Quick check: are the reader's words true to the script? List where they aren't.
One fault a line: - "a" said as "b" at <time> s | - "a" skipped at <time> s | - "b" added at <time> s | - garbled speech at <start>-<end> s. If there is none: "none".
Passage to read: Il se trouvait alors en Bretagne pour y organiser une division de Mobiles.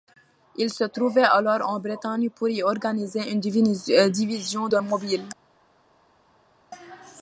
none